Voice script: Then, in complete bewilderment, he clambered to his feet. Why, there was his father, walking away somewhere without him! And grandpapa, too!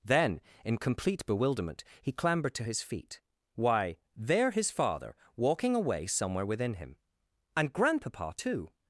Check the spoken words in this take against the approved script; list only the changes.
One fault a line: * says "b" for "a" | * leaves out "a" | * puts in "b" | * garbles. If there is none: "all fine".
* leaves out "was"
* says "within" for "without"